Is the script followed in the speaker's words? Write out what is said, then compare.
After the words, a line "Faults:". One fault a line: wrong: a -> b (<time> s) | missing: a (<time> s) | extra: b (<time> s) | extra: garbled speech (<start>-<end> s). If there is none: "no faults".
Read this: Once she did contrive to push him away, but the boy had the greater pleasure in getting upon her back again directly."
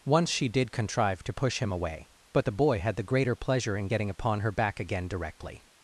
Once she did contrive to push him away, but the boy had the greater pleasure in getting upon her back again directly."
Faults:
no faults